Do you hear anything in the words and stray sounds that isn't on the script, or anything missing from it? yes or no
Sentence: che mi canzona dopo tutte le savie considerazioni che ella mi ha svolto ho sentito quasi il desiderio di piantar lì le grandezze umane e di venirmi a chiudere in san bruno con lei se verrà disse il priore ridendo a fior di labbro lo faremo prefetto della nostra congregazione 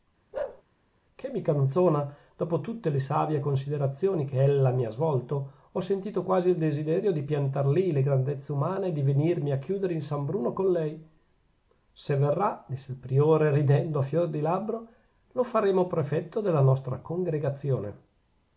yes